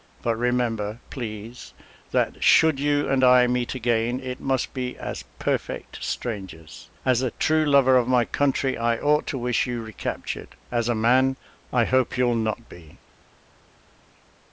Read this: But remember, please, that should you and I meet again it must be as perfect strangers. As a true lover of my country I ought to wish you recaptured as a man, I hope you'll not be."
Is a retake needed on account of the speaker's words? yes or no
no